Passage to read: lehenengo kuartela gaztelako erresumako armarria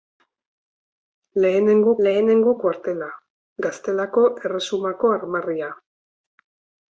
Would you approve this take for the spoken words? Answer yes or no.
no